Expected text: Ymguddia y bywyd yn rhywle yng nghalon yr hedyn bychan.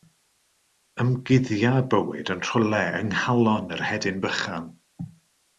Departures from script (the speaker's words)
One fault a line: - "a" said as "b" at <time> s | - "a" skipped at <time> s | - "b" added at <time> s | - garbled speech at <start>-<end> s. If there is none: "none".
none